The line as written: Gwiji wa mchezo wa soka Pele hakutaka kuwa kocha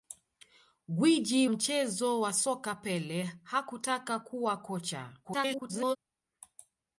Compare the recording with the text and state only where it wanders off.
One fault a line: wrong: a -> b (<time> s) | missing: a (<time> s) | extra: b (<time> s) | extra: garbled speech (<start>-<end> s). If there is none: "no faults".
missing: wa (1.5 s)
extra: garbled speech (5.2-6.0 s)